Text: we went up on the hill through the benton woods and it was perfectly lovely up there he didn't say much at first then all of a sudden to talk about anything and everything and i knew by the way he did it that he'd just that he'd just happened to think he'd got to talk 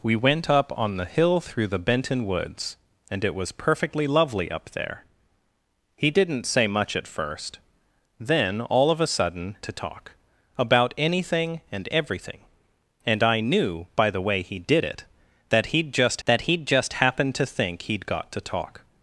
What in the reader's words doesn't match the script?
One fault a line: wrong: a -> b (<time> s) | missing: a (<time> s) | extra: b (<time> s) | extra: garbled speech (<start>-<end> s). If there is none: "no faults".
no faults